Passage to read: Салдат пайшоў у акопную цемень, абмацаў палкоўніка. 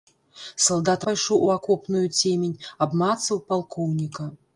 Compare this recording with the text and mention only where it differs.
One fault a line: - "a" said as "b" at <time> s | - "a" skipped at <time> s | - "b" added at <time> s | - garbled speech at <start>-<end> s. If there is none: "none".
none